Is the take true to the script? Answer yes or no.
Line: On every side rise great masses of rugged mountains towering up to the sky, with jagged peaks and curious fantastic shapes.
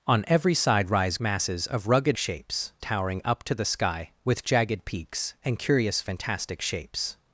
no